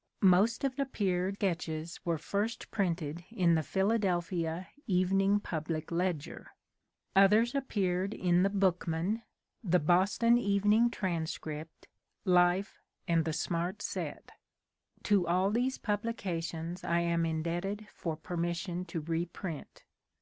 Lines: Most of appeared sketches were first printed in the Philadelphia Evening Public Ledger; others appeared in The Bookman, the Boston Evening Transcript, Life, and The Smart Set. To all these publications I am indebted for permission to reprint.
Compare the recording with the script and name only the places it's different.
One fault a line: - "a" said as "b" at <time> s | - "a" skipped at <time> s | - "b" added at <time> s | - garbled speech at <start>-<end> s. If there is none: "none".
none